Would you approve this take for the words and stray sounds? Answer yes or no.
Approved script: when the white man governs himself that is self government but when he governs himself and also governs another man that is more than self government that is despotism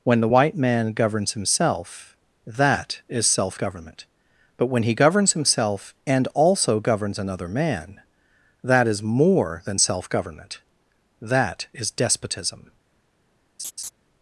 no